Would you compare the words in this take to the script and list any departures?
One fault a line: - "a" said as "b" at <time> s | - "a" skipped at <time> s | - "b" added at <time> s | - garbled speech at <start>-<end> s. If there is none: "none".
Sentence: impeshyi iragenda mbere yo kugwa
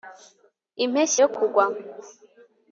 - "iragenda mbere" skipped at 1.2 s